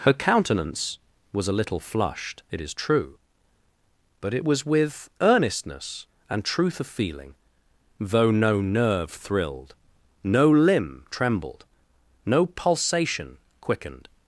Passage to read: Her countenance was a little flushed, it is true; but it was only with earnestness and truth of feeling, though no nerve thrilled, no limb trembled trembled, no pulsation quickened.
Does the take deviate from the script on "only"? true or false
true